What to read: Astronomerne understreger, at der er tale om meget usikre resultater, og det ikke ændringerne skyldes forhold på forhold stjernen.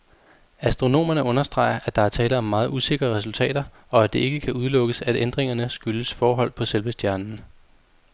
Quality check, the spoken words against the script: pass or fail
fail